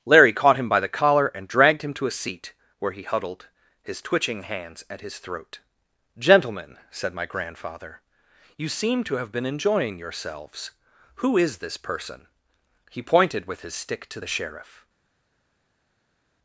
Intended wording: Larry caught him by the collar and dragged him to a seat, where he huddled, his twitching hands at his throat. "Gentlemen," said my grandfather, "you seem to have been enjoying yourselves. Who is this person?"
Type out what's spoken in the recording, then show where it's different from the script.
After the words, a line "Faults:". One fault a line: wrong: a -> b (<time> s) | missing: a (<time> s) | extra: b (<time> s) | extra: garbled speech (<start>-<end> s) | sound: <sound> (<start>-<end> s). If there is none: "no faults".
Larry caught him by the collar and dragged him to a seat, where he huddled, his twitching hands at his throat. "Gentlemen," said my grandfather, "you seem to have been enjoying yourselves. Who is this person?" He pointed with his stick to the sheriff
Faults:
extra: He pointed with his stick to the sheriff (12.9 s)